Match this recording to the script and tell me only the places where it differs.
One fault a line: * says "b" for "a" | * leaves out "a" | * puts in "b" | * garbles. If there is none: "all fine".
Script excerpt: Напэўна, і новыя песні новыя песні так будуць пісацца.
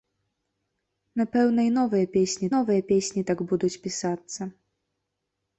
all fine